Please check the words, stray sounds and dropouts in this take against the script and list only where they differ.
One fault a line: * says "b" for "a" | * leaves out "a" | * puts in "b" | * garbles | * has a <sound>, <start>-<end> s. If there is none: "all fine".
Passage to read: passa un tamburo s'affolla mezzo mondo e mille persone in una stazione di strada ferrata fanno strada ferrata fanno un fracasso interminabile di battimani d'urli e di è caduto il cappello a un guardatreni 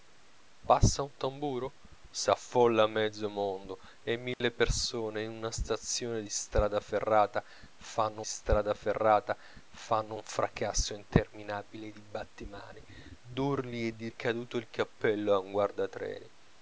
* has a dropout, 4.3-4.4 s